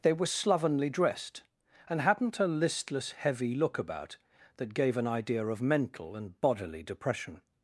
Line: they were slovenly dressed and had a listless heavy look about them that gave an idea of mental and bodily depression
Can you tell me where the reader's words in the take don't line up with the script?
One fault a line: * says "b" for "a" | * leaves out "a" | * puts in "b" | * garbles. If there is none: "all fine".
* says "hadn't" for "had"
* leaves out "them"